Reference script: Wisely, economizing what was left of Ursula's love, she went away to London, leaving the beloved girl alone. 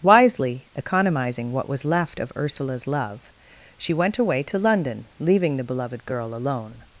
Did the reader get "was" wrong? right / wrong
right